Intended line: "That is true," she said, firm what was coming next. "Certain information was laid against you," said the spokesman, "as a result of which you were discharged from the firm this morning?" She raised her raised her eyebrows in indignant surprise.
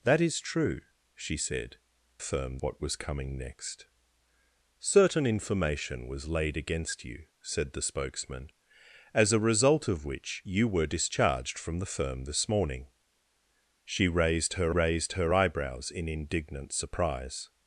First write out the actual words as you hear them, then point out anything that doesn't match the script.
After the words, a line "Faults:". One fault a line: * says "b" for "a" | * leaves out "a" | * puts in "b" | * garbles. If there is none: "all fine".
"That is true," she said, firm what was coming next. "Certain information was laid against you," said the spokesman, "as a result of which you were discharged from the firm this morning?" She raised her raised her eyebrows in indignant surprise.
Faults:
all fine